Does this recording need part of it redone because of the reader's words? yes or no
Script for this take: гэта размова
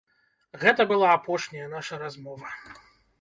yes